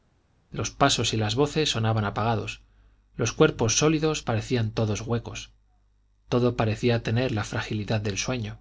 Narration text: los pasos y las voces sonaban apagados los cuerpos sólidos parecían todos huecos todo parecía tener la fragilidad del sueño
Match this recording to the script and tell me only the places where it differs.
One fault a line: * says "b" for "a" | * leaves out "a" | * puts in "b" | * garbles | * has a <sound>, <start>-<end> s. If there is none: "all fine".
all fine